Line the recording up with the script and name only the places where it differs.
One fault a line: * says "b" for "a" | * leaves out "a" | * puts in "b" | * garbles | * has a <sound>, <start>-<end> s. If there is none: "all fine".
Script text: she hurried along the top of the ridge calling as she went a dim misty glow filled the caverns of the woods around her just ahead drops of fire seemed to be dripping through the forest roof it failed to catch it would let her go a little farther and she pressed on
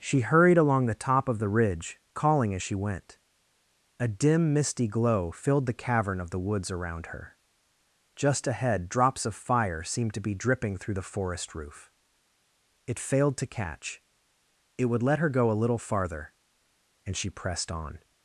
* says "cavern" for "caverns"